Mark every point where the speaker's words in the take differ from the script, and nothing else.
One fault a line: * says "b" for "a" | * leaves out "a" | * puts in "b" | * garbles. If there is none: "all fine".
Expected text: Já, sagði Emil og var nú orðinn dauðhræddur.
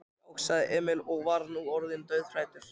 all fine